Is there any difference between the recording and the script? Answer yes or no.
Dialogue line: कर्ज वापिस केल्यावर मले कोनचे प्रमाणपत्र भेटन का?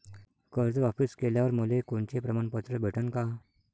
no